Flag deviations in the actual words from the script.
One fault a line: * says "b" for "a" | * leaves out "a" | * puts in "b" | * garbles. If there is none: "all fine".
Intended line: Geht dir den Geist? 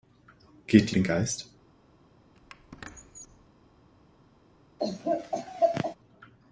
all fine